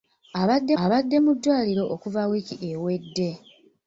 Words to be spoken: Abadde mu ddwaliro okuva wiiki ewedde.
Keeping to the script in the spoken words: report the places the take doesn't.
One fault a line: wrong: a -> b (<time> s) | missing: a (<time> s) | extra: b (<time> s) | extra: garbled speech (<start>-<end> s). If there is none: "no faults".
extra: abadde (0.8 s)